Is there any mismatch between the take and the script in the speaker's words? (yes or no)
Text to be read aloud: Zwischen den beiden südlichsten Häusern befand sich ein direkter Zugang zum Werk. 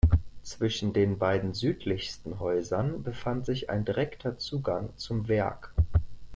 no